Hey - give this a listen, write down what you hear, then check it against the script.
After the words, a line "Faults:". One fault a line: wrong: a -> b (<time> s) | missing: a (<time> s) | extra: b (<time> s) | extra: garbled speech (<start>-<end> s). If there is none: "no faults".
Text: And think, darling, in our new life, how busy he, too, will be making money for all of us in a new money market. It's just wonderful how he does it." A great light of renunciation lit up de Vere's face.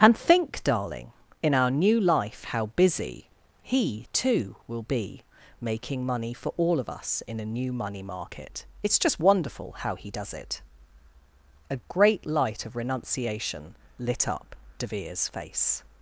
And think, darling, in our new life, how busy he, too, will be making money for all of us in a new money market. It's just wonderful how he does it." A great light of renunciation lit up de Vere's face.
Faults:
no faults